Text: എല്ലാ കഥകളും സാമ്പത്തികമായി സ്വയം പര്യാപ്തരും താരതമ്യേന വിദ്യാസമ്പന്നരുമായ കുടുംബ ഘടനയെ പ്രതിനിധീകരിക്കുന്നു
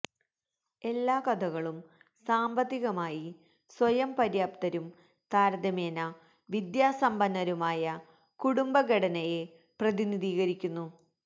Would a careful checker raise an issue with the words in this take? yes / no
no